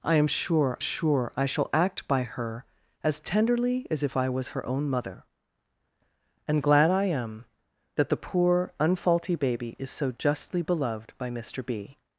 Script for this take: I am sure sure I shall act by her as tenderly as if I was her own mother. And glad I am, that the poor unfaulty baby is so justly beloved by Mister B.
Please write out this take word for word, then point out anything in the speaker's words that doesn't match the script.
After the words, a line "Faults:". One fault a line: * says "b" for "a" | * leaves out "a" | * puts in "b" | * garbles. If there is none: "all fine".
I am sure sure I shall act by her as tenderly as if I was her own mother. And glad I am, that the poor unfaulty baby is so justly beloved by Mister B.
Faults:
all fine